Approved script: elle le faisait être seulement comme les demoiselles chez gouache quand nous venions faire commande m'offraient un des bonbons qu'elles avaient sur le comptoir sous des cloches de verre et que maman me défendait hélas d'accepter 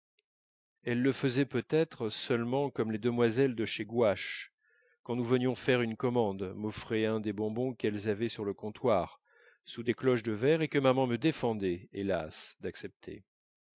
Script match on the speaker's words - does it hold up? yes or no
no